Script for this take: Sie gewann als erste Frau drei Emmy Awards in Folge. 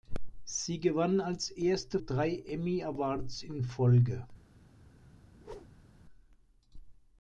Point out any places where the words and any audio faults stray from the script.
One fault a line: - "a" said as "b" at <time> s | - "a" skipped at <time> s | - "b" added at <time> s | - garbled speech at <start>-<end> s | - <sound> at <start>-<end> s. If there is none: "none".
- "Frau" skipped at 2.0 s
- whoosh at 5.3-6.0 s